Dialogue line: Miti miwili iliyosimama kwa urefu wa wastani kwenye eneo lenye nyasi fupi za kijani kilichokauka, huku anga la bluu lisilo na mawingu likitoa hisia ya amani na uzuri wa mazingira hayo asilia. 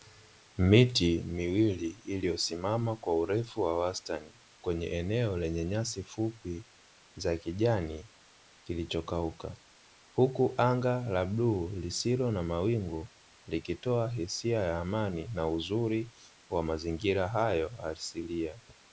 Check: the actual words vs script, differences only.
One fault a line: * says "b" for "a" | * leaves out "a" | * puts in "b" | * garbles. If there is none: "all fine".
all fine